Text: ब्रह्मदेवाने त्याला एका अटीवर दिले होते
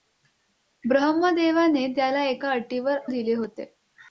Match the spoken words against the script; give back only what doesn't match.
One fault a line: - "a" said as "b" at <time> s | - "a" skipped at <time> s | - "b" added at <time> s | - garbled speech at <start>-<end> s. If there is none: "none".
none